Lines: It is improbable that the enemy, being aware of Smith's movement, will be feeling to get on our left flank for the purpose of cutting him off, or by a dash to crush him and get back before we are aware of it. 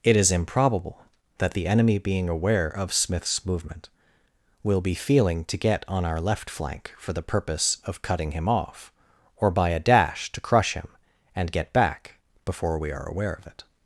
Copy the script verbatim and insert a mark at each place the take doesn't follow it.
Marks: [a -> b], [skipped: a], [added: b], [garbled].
It is improbable that the enemy, being aware of Smith's movement, will be feeling to get on our left flank for the purpose of cutting him off, or by a dash to crush him and get back before we are aware of it.